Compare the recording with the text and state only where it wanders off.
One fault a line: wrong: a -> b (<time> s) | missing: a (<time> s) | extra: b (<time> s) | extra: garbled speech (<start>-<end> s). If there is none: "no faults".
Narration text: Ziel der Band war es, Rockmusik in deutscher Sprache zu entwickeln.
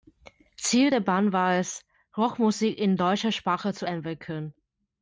no faults